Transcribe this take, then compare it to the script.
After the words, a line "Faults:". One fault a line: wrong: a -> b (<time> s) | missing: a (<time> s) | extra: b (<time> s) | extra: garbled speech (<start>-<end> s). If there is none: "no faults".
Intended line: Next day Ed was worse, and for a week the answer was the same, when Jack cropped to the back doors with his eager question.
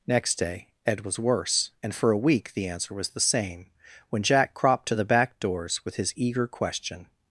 Next day Ed was worse, and for a week the answer was the same, when Jack cropped to the back doors with his eager question.
Faults:
no faults